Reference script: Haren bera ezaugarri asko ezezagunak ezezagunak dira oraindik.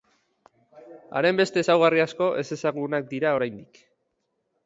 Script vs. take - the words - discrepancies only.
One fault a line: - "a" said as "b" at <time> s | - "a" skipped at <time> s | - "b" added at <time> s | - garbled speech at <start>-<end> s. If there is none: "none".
- "bera" said as "beste" at 1.4 s
- "ezezagunak" skipped at 3.1 s